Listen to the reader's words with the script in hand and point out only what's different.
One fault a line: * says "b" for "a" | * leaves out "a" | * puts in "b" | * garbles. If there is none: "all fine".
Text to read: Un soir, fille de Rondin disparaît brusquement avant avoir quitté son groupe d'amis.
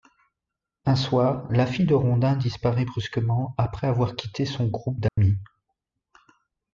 * puts in "la"
* says "après" for "avant"